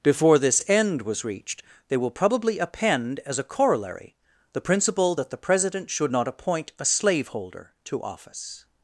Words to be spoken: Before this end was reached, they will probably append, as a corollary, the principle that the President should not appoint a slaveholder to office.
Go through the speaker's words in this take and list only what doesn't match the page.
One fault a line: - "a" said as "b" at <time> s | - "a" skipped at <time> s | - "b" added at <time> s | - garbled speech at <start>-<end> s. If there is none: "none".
none